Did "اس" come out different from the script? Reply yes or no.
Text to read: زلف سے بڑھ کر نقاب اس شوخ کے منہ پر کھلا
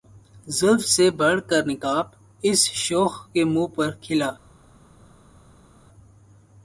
no